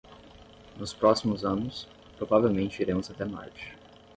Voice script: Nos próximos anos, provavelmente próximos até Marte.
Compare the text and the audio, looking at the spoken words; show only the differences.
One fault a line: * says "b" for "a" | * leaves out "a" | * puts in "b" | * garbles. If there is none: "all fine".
* says "iremos" for "próximos"